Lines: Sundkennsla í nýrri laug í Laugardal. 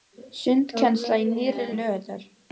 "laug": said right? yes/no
no